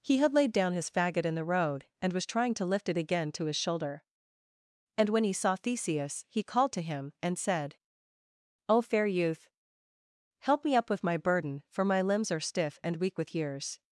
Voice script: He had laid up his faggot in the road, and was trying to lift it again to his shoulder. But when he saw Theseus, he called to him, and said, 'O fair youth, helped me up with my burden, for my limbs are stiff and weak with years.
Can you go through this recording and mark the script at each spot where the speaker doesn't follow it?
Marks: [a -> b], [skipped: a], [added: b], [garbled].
He had laid [up -> down] his faggot in the road, and was trying to lift it again to his shoulder. [But -> And] when he saw Theseus, he called to him, and said, 'O fair youth, [helped -> help] me up with my burden, for my limbs are stiff and weak with years.